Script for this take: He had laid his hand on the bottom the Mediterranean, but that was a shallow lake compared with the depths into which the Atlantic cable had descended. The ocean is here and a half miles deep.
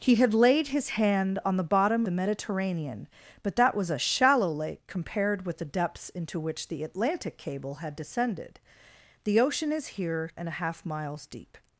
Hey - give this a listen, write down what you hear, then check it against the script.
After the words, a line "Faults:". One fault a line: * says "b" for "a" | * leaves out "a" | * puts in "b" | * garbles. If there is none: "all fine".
He had laid his hand on the bottom the Mediterranean, but that was a shallow lake compared with the depths into which the Atlantic cable had descended. The ocean is here and a half miles deep.
Faults:
all fine